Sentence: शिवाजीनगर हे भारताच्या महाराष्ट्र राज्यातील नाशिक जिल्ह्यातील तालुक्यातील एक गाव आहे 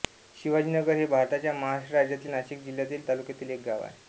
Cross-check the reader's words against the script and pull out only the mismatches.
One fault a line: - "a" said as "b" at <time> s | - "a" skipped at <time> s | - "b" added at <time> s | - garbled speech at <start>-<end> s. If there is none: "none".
none